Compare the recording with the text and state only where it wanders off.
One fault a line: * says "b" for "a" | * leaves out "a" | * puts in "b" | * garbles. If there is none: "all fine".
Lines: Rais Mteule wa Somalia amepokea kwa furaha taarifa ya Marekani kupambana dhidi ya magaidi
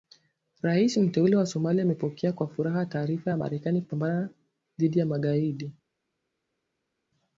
all fine